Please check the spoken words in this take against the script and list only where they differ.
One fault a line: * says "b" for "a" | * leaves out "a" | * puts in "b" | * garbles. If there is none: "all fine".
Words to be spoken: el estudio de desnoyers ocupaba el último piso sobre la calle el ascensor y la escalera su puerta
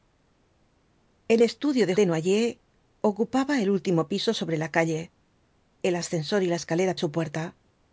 all fine